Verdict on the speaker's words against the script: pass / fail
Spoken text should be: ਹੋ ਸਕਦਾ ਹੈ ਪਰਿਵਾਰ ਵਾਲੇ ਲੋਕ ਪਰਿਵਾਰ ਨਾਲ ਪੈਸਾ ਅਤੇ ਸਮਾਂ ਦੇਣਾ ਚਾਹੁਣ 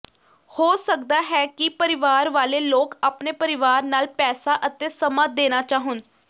fail